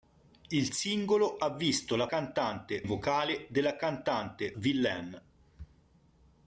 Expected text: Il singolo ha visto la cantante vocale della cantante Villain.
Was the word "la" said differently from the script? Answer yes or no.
no